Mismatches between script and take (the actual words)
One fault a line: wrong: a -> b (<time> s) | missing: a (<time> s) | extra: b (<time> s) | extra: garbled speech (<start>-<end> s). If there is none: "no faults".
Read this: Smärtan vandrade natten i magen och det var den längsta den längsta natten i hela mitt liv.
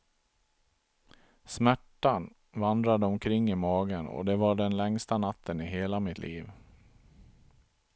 wrong: natten -> omkring (3.0 s)
missing: den längsta (5.2 s)